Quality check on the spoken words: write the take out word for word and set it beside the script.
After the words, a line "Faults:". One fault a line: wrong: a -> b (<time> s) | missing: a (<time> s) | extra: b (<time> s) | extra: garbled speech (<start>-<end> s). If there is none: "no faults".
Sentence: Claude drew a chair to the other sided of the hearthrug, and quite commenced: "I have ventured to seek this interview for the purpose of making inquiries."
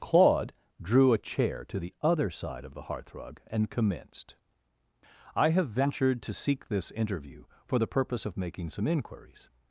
Claude drew a chair to the other side of the hearthrug, and commenced: "I have ventured to seek this interview for the purpose of making some inquiries."
Faults:
wrong: sided -> side (2.3 s)
missing: quite (3.7 s)
extra: some (8.7 s)